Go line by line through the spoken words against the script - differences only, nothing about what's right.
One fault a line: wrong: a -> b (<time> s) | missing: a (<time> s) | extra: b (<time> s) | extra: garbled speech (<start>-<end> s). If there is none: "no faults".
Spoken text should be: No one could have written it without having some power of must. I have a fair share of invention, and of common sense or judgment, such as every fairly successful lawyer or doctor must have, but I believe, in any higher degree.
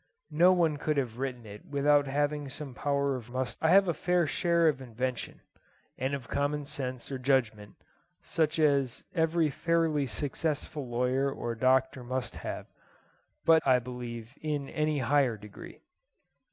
no faults